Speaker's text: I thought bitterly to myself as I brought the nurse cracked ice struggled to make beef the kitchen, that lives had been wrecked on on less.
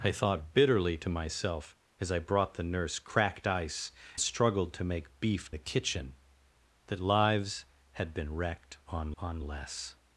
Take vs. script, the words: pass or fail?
pass